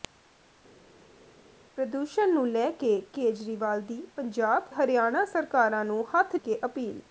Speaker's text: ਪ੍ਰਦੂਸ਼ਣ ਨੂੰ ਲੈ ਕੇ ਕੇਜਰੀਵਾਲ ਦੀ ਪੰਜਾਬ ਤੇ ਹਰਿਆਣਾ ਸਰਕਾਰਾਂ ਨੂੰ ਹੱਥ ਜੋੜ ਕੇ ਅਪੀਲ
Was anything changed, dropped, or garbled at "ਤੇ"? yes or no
yes